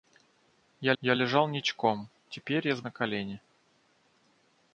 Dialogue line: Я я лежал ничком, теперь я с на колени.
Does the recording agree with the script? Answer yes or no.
yes